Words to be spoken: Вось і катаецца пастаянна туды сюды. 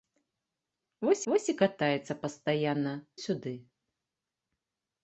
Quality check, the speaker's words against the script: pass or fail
fail